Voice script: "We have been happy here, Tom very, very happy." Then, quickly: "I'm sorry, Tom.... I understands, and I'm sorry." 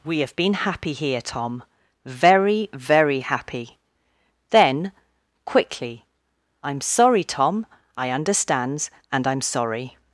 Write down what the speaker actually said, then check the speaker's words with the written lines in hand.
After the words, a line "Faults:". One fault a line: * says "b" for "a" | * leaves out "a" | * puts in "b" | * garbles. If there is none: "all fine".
"We have been happy here, Tom very, very happy." Then, quickly: "I'm sorry, Tom.... I understands, and I'm sorry."
Faults:
all fine